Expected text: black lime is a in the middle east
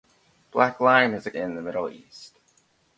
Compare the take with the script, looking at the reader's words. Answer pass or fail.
pass